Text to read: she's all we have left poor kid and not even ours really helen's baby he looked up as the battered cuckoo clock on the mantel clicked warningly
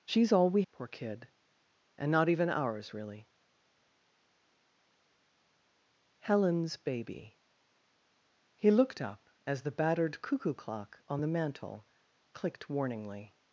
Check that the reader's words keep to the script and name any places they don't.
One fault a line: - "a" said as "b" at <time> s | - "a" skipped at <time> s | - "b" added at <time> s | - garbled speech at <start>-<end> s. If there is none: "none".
- "have left" skipped at 0.6 s